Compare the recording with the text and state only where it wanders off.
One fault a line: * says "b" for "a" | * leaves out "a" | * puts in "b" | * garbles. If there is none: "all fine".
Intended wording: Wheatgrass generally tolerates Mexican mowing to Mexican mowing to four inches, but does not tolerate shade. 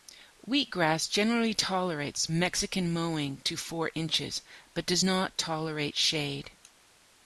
* leaves out "Mexican mowing to"